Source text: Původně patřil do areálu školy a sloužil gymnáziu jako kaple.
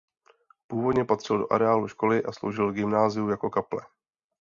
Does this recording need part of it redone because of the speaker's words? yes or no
no